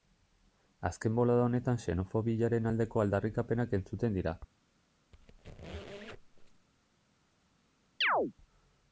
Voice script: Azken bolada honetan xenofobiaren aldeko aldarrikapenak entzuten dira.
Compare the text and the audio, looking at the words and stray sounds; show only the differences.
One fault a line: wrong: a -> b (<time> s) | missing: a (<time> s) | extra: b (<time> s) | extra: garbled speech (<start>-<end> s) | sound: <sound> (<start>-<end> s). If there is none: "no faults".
sound: squeak (5.1-6.7 s)
sound: chirp (8.0-8.3 s)